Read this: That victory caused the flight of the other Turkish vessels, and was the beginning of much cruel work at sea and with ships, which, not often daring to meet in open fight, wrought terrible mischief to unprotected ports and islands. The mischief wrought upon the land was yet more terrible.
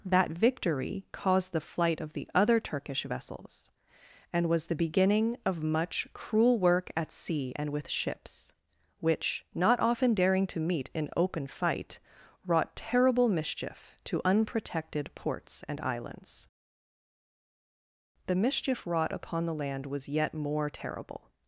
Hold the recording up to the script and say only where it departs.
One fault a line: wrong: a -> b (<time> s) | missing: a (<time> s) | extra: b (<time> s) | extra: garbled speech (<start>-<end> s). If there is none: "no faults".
no faults